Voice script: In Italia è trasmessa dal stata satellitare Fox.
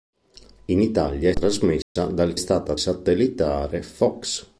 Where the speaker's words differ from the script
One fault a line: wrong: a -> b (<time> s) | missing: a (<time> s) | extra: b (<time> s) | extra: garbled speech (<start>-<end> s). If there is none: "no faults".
no faults